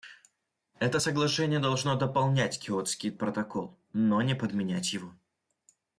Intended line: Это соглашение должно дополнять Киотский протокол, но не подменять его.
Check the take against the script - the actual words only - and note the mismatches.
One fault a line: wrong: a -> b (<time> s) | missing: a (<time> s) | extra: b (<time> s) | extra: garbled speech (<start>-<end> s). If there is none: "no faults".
no faults